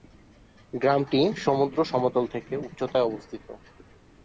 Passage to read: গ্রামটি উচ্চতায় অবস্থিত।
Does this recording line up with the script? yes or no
no